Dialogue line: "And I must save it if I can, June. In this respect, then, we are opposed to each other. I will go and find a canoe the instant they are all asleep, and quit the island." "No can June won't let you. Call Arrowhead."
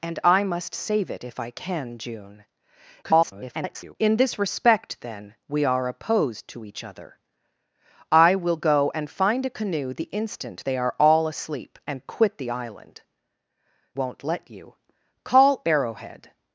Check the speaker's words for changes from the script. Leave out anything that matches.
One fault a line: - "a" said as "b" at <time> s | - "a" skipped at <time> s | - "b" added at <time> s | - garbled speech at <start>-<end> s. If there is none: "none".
- garbled speech at 3.0-4.0 s
- "No can June" skipped at 13.0 s